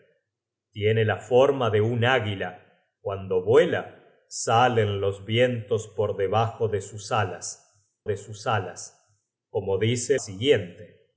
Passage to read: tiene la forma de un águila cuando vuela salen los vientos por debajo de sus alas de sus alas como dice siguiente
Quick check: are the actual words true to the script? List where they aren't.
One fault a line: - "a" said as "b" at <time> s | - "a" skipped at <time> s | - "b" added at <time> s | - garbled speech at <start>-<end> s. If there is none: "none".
none